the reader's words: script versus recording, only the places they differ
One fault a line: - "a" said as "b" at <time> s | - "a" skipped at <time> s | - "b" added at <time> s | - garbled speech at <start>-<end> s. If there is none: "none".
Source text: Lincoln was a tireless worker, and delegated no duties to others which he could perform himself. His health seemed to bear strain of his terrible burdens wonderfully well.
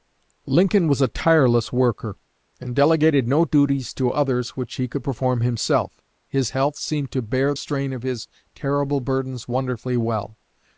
none